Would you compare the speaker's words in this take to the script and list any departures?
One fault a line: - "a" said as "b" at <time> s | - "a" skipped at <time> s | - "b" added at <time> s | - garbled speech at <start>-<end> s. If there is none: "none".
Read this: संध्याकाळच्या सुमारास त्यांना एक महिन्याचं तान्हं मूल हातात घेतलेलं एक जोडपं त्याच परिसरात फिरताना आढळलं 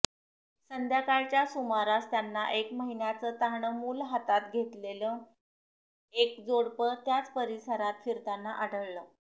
none